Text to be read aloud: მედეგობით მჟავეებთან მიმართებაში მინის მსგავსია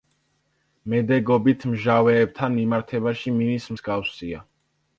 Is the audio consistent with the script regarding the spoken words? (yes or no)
yes